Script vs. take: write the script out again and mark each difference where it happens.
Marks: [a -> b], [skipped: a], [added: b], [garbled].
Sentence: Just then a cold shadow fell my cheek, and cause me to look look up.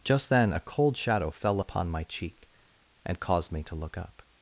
Just then a cold shadow fell [added: upon] my cheek, and [cause -> caused] me to look [skipped: look] up.